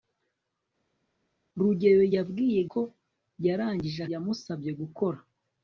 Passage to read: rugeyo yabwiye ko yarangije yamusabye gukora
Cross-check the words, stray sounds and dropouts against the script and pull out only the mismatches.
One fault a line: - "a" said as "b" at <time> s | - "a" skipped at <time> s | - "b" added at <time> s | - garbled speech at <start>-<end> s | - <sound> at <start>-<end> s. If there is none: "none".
none